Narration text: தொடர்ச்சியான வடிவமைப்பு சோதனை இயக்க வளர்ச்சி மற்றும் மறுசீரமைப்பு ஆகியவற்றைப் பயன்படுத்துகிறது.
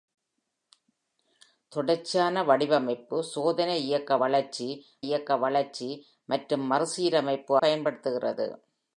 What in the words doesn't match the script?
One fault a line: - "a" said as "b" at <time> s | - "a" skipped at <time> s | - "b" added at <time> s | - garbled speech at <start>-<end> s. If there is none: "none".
- "இயக்க வளர்ச்சி" added at 5.0 s
- "ஆகியவற்றைப்" skipped at 7.6 s